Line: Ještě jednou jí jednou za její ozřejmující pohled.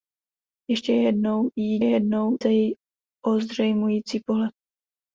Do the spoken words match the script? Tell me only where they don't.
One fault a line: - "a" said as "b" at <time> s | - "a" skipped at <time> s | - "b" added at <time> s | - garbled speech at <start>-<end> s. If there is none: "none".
none